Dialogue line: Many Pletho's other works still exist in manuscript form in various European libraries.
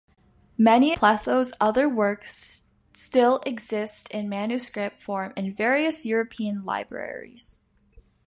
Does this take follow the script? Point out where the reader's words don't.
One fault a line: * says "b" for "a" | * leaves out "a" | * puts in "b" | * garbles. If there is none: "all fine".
all fine